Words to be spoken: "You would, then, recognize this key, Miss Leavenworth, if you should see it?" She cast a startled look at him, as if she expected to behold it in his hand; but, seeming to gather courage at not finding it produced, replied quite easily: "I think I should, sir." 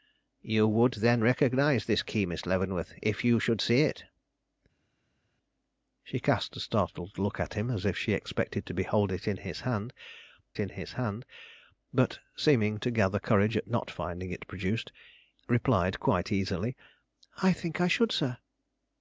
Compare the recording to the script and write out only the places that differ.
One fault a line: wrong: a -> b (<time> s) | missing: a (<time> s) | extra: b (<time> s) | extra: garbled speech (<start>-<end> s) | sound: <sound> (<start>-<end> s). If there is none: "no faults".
extra: in his hand (10.6 s)